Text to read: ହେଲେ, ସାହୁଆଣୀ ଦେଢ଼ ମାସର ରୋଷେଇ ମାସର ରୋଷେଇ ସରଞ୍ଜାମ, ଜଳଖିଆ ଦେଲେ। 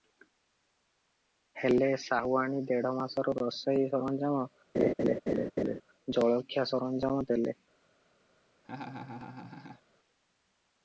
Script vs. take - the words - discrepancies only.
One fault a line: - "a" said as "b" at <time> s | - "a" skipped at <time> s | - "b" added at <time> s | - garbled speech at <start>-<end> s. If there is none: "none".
- "ମାସର ରୋଷେଇ" said as "ସରଞ୍ଜାମ ଜଳଖିଆ" at 4.0 s
- "ଜଳଖିଆ" skipped at 7.3 s